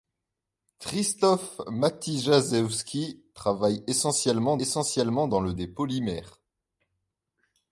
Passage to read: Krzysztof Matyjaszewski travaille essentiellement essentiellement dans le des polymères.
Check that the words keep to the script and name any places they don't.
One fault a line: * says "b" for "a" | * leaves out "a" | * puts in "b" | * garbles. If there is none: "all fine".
all fine